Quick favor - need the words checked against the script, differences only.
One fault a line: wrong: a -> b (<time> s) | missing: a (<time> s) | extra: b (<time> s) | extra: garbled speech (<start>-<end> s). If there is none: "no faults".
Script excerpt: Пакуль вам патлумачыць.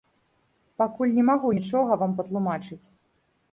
extra: не магу нічога (1.2 s)